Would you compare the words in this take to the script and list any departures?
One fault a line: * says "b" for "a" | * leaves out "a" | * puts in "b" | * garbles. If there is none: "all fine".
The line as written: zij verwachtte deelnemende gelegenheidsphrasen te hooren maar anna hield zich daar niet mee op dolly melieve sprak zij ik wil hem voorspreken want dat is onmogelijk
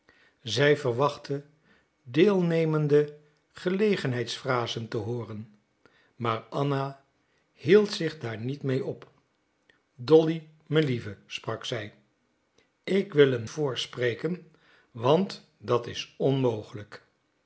all fine